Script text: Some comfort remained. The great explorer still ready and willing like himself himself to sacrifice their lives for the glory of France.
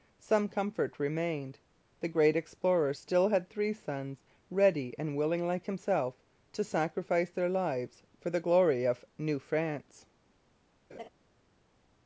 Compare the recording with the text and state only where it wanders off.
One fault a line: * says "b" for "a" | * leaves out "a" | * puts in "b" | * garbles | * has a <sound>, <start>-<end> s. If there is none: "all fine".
* puts in "had three sons"
* leaves out "himself"
* puts in "New"
* has a laugh, 10.9-11.1 s